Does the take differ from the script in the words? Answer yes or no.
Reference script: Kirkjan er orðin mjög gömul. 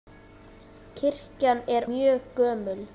yes